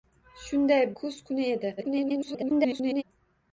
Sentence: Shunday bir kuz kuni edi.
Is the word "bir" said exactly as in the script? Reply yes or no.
no